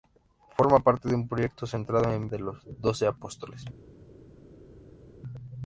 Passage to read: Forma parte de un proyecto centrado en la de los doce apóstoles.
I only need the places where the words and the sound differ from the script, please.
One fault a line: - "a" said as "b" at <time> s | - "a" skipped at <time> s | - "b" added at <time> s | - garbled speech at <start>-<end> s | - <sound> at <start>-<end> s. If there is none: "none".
none